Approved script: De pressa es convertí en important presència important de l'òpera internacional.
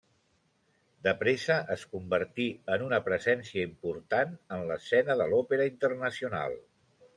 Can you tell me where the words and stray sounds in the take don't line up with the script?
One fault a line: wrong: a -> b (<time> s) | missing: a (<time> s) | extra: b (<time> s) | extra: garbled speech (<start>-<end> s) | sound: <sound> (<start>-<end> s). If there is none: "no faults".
wrong: important -> una (2.8 s)
extra: en l'escena (4.6 s)